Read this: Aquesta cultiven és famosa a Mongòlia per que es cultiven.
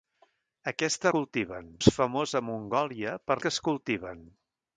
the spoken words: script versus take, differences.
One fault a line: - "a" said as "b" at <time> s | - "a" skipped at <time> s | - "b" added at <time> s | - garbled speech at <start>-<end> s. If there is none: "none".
none